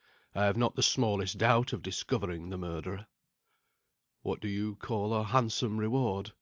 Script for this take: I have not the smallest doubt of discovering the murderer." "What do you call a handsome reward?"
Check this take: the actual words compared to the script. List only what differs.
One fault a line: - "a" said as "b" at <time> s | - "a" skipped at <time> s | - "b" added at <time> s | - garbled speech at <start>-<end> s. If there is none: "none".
none